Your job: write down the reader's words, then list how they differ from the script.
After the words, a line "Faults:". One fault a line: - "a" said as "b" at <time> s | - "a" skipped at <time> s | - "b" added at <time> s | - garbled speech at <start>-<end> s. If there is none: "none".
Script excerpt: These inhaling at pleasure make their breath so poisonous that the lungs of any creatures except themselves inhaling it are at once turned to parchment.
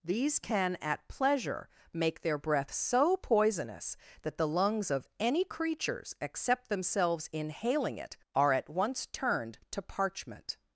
These can at pleasure make their breath so poisonous that the lungs of any creatures except themselves inhaling it are at once turned to parchment.
Faults:
- "inhaling" said as "can" at 0.4 s